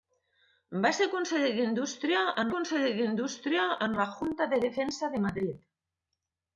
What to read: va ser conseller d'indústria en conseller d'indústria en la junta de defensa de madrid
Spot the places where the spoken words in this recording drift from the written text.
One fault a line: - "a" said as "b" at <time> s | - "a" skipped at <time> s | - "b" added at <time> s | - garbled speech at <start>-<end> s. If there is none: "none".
none